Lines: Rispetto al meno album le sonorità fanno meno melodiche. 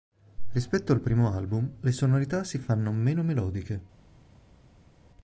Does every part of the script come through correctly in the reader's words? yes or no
no